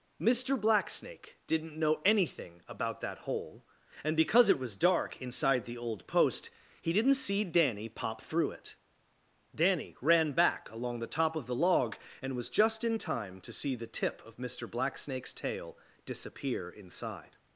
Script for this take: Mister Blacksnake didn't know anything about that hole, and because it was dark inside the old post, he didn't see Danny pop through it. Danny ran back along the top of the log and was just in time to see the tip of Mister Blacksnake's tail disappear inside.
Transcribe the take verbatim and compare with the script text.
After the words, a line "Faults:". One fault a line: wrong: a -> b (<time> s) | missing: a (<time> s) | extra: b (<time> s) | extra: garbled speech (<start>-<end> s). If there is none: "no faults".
Mister Blacksnake didn't know anything about that hole, and because it was dark inside the old post, he didn't see Danny pop through it. Danny ran back along the top of the log and was just in time to see the tip of Mister Blacksnake's tail disappear inside.
Faults:
no faults